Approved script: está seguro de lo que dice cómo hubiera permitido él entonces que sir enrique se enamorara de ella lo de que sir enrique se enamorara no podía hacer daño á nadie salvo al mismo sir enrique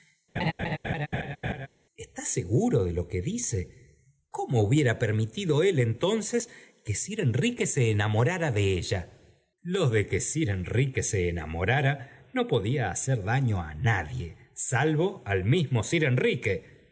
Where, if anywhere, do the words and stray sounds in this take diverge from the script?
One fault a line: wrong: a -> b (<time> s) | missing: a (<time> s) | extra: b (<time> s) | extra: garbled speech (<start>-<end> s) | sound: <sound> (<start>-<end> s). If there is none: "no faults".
sound: laugh (0.4-1.7 s)